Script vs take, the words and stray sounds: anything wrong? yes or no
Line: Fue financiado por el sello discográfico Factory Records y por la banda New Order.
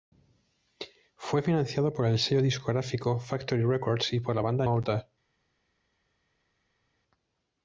yes